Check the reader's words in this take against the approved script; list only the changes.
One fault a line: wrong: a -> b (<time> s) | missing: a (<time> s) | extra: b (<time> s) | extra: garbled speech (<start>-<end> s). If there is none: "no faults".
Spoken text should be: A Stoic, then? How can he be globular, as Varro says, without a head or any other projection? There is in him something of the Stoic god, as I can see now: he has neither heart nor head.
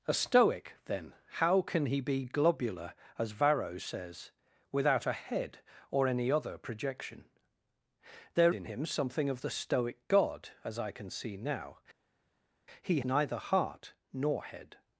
missing: is (8.6 s)
missing: has (13.0 s)